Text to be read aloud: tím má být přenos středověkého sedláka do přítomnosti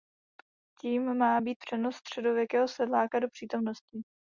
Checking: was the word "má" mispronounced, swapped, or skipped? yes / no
no